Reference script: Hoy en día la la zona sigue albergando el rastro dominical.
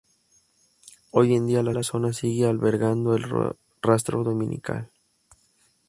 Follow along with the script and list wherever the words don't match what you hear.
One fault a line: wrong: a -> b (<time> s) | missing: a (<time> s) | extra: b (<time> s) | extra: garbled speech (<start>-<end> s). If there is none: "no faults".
no faults